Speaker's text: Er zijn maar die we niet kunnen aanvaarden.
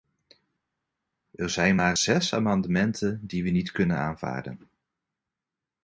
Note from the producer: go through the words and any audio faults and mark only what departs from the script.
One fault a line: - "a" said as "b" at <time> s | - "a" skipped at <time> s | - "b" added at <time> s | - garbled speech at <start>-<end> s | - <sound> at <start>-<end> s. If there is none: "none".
- "zes amendementen" added at 1.9 s